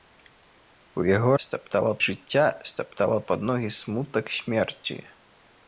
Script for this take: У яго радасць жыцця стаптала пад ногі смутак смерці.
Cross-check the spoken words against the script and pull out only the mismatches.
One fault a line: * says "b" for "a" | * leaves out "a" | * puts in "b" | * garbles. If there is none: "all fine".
* says "стаптала" for "радасць"